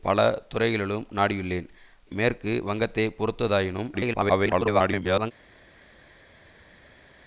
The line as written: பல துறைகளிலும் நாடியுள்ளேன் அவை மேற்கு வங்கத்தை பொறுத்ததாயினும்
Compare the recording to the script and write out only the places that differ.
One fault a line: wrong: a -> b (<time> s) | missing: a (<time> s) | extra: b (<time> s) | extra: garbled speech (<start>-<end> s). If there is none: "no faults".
missing: அவை (1.7 s)
extra: garbled speech (3.9-5.3 s)